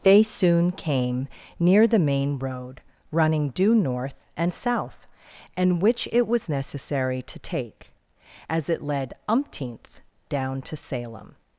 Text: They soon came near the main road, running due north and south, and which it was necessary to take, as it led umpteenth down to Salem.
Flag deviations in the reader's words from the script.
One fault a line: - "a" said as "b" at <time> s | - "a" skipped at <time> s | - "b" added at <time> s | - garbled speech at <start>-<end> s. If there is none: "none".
none